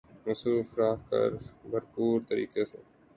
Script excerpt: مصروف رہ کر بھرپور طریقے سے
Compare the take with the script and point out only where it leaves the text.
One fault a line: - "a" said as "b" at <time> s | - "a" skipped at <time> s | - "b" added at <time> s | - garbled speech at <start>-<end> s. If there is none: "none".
none